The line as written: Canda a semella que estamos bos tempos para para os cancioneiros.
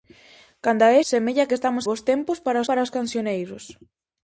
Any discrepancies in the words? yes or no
no